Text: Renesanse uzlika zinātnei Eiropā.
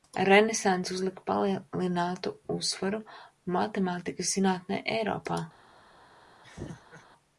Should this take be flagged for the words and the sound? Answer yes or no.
yes